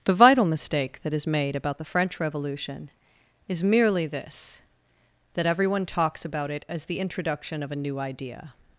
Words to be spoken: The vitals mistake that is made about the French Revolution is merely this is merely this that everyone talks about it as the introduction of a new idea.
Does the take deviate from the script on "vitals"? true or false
true